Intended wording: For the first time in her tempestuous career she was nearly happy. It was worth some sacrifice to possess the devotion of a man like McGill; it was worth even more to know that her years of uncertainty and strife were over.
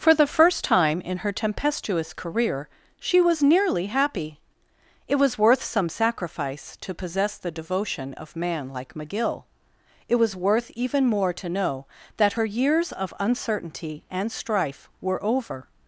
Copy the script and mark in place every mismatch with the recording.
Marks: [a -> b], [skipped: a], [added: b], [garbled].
For the first time in her tempestuous career she was nearly happy. It was worth some sacrifice to possess the devotion of [skipped: a] man like McGill; it was worth even more to know that her years of uncertainty and strife were over.